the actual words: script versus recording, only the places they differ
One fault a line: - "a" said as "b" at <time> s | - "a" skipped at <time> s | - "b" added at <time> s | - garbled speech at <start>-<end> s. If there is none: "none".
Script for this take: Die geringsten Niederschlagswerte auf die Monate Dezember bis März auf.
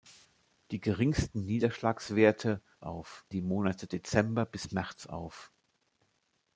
none